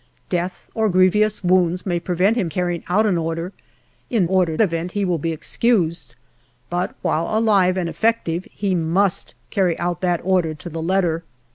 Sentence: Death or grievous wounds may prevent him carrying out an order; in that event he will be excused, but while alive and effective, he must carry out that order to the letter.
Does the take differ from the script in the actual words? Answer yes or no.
yes